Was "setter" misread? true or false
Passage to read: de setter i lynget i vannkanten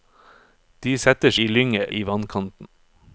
false